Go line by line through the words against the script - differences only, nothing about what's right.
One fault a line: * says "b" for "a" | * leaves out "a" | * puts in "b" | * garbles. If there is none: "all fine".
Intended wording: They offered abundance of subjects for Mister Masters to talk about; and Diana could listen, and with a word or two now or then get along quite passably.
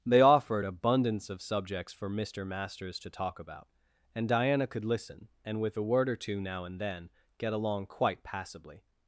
* says "and" for "or"